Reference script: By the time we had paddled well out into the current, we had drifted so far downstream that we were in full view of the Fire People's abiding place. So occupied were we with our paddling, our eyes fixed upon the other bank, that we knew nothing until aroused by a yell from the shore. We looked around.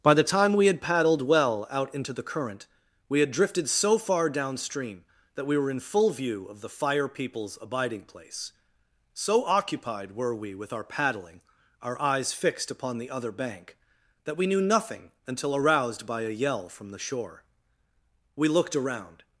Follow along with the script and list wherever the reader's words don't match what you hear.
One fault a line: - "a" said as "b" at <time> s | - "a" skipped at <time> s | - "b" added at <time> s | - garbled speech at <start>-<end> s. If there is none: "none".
none